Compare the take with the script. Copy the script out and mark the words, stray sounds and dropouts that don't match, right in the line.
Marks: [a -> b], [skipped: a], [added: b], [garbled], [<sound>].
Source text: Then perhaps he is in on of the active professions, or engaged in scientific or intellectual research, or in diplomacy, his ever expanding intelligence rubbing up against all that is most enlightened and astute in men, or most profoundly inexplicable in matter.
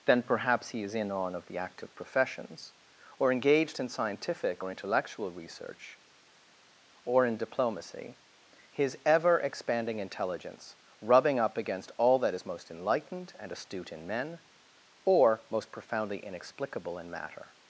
Then perhaps he is in on of the active professions, or engaged in scientific or intellectual research, or in diplomacy, his ever expanding intelligence rubbing up against all that is most enlightened and astute in men, or most profoundly inexplicable in matter.